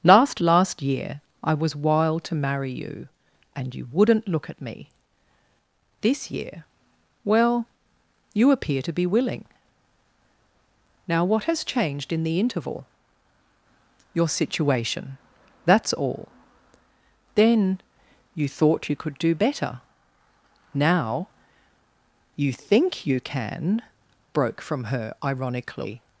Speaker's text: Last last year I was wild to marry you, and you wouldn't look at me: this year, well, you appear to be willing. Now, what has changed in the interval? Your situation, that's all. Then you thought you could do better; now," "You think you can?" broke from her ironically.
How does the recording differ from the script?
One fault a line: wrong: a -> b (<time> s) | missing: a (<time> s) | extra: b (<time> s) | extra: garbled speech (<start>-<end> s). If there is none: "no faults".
no faults